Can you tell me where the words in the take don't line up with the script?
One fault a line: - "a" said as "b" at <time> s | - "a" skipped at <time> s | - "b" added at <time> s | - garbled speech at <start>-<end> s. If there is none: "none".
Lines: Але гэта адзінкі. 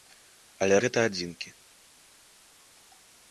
none